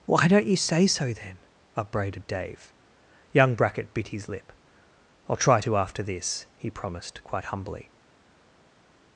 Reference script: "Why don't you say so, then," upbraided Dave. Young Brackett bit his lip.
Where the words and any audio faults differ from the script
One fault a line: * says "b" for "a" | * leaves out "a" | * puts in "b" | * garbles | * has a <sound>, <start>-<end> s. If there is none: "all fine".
* puts in "I'll try to after this he promised quite humbly"